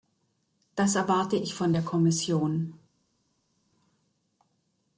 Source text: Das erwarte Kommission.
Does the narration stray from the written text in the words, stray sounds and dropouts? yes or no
yes